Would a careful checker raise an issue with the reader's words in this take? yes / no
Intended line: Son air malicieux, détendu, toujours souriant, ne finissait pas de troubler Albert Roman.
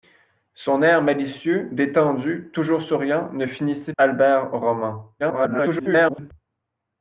yes